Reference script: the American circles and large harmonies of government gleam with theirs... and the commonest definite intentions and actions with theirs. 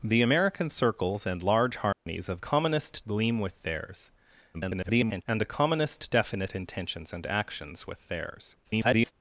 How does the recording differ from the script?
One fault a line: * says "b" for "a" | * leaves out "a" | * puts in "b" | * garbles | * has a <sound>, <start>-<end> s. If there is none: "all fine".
* has a dropout, 1.9-2.1 s
* says "commonest" for "government"
* garbles
* garbles